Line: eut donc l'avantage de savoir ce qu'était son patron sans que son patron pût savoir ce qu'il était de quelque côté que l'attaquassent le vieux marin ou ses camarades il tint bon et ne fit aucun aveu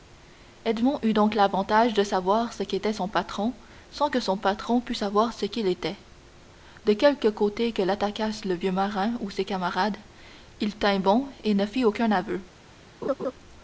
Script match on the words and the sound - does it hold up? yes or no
no